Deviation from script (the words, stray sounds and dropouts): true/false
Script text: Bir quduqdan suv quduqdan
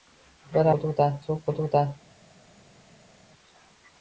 false